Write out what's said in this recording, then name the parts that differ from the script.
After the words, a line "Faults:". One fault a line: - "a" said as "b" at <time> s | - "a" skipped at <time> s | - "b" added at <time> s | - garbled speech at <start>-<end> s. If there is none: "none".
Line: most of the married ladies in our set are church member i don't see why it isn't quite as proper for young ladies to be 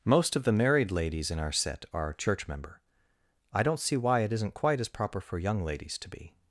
most of the married ladies in our set are church member i don't see why it isn't quite as proper for young ladies to be
Faults:
none